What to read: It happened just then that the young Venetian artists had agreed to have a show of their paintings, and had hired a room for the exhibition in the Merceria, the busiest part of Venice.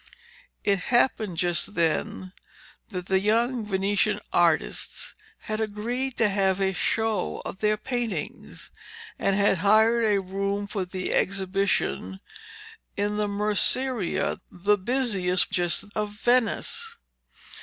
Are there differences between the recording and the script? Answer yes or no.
yes